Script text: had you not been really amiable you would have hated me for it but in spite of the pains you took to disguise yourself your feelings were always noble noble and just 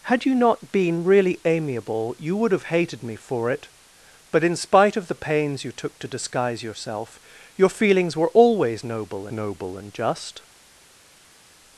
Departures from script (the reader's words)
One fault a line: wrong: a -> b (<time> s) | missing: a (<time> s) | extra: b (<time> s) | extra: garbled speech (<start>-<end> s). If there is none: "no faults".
no faults